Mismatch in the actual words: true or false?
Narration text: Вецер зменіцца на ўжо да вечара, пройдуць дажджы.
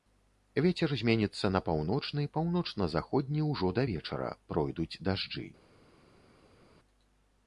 true